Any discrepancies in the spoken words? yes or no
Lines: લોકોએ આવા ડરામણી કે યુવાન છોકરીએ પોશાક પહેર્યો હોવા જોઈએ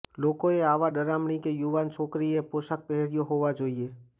no